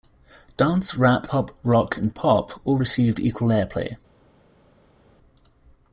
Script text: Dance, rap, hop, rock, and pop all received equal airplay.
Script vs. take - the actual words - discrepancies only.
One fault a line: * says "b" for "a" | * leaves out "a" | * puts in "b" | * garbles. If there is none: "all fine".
all fine